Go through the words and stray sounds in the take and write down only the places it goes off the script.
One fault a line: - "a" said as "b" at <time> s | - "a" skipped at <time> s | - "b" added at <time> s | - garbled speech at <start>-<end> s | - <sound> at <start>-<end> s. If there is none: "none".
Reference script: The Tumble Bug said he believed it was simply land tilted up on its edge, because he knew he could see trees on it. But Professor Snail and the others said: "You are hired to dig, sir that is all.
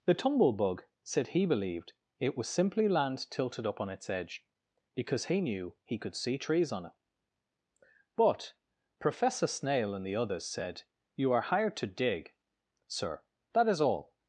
none